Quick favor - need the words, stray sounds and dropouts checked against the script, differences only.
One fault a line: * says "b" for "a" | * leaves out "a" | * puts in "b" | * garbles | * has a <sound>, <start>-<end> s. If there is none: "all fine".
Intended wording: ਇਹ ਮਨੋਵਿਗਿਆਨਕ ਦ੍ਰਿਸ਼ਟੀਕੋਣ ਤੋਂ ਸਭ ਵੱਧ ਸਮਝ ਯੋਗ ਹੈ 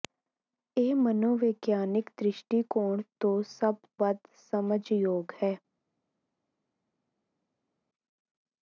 all fine